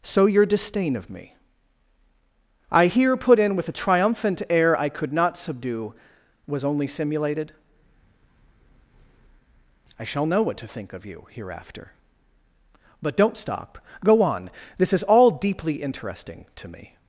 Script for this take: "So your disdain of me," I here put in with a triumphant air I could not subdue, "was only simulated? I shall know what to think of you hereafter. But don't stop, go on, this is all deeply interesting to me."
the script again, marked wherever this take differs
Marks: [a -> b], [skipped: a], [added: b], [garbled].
"So your disdain of me," I here put in with a triumphant air I could not subdue, "was only simulated? I shall know what to think of you hereafter. But don't stop, go on, this is all deeply interesting to me."